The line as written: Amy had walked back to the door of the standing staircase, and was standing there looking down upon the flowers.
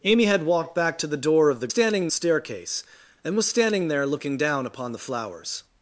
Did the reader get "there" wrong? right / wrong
right